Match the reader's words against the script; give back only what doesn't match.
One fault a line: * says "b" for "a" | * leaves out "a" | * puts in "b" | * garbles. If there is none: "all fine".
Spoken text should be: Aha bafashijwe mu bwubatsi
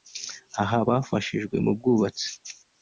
all fine